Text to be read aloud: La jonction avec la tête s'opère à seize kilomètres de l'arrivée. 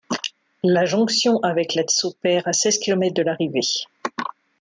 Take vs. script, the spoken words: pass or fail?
fail